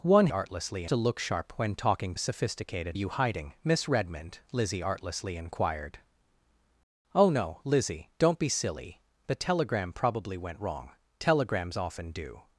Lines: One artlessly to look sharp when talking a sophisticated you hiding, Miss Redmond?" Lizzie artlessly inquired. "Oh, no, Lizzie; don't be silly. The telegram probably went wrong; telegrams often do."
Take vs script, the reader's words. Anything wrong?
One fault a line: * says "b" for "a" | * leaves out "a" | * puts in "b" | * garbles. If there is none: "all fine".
all fine